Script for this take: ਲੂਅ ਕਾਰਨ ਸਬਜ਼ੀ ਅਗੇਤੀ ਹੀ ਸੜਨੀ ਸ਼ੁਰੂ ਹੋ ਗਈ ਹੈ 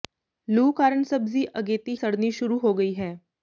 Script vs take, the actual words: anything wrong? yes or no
yes